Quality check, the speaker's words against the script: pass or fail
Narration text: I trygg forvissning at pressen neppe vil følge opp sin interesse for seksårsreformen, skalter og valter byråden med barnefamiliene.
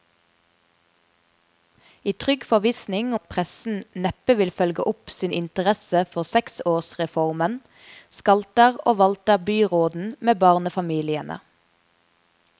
pass